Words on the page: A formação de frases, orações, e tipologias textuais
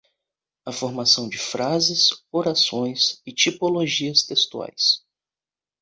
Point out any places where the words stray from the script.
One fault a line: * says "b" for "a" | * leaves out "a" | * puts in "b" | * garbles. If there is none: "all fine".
all fine